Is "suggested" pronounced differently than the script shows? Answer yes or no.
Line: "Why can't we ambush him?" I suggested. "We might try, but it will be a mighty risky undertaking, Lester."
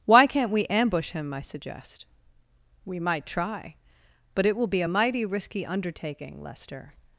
yes